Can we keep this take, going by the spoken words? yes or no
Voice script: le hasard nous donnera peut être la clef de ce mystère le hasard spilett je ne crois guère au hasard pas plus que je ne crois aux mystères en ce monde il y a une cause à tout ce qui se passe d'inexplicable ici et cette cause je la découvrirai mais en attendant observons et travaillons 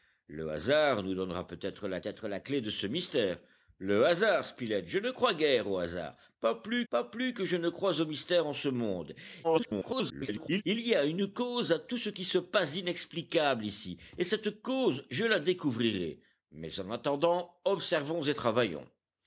no